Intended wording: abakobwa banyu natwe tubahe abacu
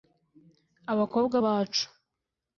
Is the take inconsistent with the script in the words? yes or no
yes